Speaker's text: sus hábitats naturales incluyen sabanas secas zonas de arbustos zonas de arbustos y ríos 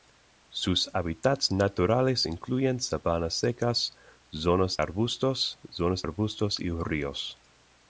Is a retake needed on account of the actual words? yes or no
yes